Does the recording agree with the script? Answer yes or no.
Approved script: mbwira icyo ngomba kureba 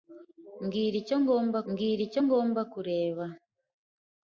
no